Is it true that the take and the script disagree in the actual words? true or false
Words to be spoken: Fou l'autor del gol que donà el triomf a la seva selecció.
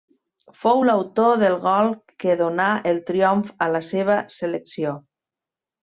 false